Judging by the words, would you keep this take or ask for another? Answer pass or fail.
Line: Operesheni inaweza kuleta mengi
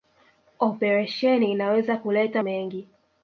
pass